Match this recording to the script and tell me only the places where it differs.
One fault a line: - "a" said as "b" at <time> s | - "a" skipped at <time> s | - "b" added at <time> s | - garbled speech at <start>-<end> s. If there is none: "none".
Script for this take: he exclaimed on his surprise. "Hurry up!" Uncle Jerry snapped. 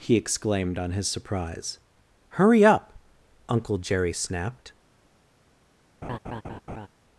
none